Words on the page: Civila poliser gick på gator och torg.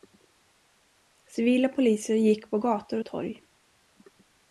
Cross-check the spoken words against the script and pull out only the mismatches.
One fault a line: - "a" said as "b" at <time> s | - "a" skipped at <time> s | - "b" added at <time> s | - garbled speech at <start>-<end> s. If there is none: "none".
none